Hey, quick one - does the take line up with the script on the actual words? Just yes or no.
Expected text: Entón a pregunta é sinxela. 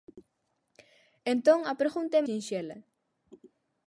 yes